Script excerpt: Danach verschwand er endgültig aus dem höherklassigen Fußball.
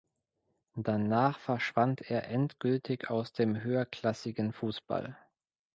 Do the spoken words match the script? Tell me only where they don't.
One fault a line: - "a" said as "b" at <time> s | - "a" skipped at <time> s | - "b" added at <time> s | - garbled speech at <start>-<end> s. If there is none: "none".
none